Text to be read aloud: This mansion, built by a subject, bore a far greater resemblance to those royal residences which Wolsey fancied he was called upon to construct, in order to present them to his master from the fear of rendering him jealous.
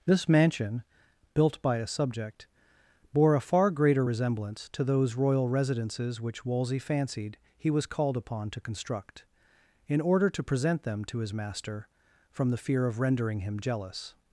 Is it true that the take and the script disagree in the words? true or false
false